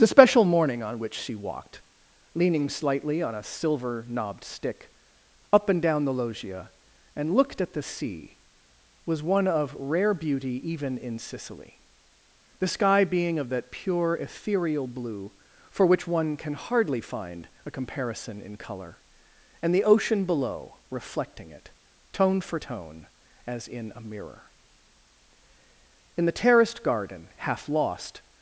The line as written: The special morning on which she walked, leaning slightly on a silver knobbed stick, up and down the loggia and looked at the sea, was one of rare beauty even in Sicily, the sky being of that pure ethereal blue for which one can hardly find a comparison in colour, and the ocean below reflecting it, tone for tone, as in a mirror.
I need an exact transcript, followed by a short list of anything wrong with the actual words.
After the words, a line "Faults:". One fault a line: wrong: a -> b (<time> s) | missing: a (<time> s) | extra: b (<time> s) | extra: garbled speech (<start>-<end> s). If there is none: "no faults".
The special morning on which she walked, leaning slightly on a silver knobbed stick, up and down the loggia and looked at the sea, was one of rare beauty even in Sicily, the sky being of that pure ethereal blue for which one can hardly find a comparison in colour, and the ocean below reflecting it, tone for tone, as in a mirror. In the terraced garden, half lost
Faults:
extra: In the terraced garden half lost (26.2 s)